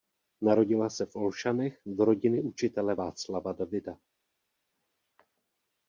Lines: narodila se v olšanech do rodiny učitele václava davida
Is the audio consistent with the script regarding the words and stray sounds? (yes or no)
yes